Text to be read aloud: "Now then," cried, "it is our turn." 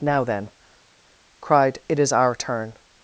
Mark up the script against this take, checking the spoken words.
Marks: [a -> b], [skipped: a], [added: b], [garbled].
"Now then," cried, "it is our turn."